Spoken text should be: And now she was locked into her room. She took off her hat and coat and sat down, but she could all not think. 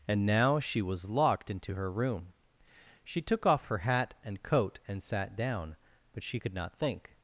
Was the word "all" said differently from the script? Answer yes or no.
yes